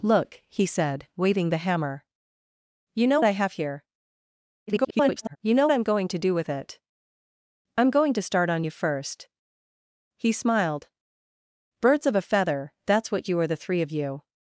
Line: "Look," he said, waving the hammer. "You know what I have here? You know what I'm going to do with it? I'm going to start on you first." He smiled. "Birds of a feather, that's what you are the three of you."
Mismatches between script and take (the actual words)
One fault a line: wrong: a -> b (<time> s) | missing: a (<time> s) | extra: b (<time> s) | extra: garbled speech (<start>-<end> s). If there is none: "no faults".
missing: what (3.2 s)
extra: garbled speech (4.7-5.4 s)
missing: what (5.7 s)